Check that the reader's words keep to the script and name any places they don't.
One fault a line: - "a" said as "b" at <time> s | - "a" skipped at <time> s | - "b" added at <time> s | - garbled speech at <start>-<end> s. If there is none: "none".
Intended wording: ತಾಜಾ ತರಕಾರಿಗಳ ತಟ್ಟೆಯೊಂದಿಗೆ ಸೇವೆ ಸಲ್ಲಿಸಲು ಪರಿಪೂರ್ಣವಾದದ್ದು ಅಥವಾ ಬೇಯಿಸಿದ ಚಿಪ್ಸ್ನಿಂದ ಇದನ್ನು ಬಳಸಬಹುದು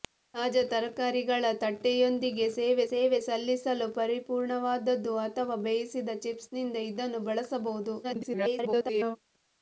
- "ಸೇವೆ" added at 2.9 s
- garbled speech at 8.0-9.2 s